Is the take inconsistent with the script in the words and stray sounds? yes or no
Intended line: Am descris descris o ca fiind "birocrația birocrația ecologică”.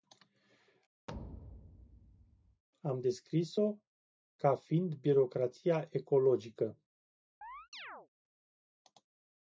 yes